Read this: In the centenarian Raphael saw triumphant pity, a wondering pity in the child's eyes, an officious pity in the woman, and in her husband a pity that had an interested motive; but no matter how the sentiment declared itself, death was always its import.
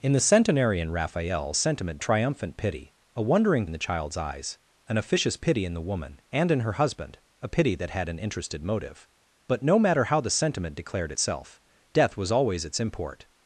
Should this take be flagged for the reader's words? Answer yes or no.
yes